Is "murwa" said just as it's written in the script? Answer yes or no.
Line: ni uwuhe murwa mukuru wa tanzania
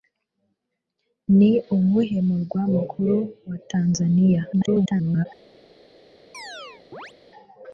yes